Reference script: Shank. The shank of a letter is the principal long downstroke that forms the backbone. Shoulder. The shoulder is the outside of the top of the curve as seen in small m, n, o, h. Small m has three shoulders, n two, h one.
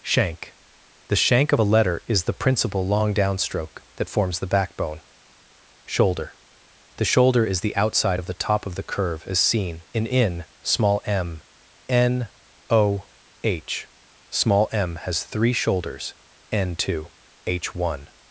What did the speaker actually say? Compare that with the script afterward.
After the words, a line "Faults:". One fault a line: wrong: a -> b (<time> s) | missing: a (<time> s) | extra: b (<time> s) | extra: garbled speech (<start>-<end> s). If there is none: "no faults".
Shank. The shank of a letter is the principal long downstroke that forms the backbone. Shoulder. The shoulder is the outside of the top of the curve as seen in in small m, n, o, h. Small m has three shoulders, n two, h one.
Faults:
extra: in (10.1 s)